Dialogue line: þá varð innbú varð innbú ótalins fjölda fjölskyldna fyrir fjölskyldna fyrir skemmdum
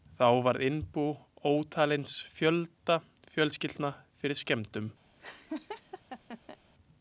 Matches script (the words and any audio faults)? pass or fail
fail